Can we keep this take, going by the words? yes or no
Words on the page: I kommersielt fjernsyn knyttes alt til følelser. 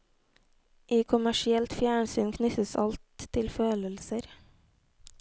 yes